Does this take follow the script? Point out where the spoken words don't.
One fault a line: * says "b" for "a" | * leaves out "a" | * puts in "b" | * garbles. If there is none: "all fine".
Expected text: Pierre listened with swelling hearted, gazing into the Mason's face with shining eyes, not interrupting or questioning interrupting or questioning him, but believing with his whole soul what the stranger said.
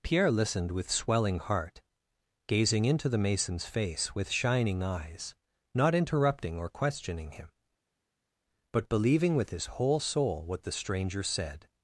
* says "heart" for "hearted"
* leaves out "interrupting or questioning"